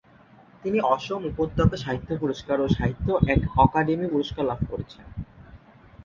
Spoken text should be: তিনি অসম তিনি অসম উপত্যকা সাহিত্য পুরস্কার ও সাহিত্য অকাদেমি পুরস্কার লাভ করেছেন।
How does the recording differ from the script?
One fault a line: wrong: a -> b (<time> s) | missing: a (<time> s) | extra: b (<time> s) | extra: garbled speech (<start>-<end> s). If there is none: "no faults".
missing: তিনি অসম (1.2 s)